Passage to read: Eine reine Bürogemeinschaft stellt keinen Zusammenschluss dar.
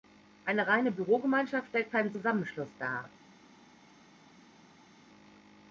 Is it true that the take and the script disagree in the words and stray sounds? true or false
false